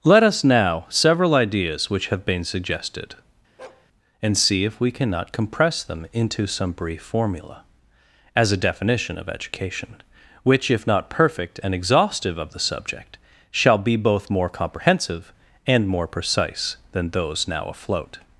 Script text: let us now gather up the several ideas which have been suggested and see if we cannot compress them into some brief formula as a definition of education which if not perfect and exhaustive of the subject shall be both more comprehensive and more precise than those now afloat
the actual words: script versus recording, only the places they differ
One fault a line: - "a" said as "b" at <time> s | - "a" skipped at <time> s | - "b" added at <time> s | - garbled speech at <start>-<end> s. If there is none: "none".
- "gather up the" skipped at 0.9 s